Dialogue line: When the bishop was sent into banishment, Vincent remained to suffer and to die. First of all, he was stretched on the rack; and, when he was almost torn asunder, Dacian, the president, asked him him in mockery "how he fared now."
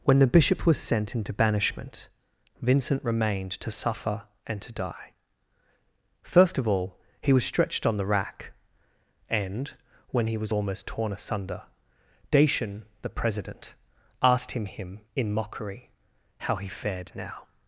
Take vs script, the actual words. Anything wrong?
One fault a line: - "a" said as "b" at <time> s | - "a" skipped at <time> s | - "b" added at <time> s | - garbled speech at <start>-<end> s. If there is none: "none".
none